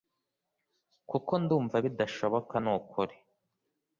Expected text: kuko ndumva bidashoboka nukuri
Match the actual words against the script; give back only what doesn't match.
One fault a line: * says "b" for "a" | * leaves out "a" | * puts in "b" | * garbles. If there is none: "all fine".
all fine